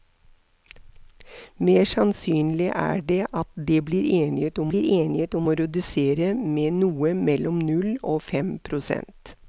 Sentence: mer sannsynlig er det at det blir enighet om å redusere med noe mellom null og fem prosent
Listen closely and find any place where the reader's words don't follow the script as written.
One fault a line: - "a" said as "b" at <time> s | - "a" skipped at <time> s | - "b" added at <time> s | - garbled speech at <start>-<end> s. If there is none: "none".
- "blir enighet om" added at 4.7 s